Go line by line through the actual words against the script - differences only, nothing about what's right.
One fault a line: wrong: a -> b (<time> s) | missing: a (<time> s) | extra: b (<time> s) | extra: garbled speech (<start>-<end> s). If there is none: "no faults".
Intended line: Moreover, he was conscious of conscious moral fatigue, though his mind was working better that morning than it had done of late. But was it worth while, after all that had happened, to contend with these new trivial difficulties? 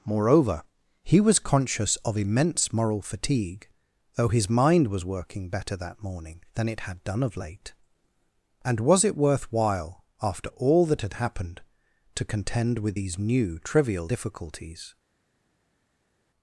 wrong: conscious -> immense (2.2 s)
wrong: But -> And (8.6 s)